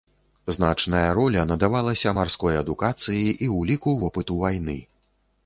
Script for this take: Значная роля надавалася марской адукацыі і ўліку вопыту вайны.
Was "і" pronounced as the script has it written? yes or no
yes